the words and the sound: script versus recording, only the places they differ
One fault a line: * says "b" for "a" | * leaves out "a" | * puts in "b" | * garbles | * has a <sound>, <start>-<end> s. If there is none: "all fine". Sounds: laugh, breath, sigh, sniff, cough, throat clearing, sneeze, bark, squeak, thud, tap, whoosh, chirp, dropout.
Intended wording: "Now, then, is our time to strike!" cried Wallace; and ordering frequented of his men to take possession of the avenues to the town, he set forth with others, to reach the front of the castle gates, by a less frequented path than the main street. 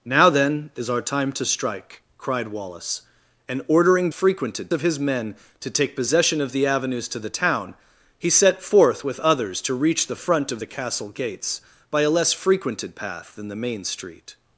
all fine